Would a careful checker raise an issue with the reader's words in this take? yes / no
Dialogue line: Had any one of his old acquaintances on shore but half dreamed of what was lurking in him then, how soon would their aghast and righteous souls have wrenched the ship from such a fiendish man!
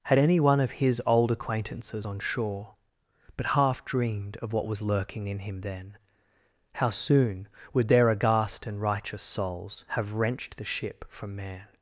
yes